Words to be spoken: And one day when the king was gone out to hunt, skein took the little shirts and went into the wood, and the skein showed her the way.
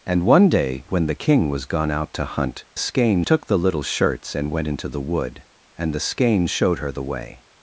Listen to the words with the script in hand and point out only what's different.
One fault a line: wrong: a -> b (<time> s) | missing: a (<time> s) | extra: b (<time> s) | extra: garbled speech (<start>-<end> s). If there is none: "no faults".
no faults